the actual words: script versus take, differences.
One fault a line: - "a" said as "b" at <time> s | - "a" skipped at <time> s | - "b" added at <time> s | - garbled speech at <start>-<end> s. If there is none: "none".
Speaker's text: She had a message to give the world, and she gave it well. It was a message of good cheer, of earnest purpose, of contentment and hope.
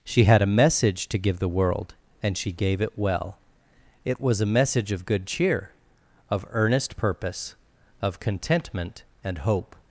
none